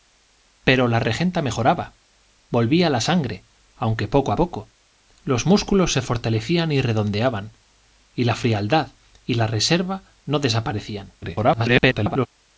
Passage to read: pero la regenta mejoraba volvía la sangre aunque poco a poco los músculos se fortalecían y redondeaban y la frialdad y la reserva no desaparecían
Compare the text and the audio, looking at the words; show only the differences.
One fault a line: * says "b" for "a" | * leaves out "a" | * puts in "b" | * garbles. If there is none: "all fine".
* garbles